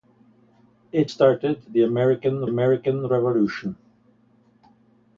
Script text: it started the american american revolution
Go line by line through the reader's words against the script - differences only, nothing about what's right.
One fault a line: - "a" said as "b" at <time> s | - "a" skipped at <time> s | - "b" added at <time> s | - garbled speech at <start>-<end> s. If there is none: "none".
none